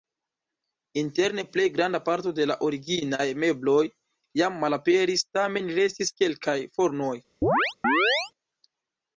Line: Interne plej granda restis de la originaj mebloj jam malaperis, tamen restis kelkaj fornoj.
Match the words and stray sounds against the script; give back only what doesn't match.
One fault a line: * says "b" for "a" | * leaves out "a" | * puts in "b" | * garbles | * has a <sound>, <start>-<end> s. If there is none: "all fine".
* says "parto" for "restis"
* has a chirp, 7.4-8.3 s